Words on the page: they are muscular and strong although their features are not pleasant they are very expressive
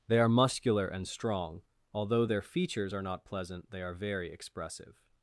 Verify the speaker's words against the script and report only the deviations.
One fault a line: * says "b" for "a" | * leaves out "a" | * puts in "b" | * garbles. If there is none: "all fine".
all fine